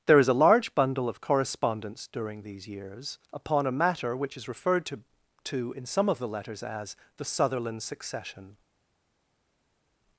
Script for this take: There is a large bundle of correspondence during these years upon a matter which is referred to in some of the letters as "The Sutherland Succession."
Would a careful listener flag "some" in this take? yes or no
no